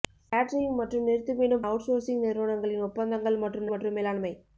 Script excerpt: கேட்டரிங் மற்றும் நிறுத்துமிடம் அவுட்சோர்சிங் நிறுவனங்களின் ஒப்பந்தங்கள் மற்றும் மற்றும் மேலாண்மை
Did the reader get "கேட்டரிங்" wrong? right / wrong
right